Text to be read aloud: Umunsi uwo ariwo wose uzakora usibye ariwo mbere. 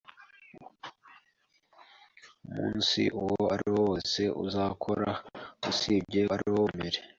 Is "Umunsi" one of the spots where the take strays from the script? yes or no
no